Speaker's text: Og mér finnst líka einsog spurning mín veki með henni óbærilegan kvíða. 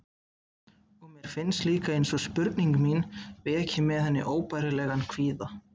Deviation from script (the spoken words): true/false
false